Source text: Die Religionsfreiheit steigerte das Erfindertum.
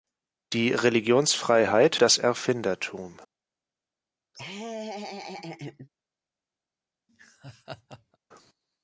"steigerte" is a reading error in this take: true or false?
true